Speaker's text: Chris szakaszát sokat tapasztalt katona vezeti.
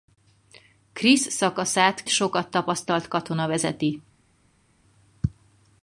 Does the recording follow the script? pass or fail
pass